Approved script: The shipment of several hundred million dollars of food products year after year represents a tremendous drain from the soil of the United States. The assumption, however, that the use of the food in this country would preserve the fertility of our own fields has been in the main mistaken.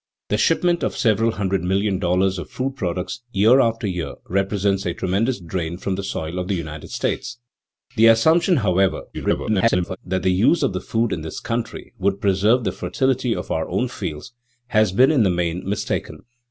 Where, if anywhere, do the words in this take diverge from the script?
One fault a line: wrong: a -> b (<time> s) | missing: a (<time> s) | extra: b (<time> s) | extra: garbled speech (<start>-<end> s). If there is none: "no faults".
extra: garbled speech (9.1-10.0 s)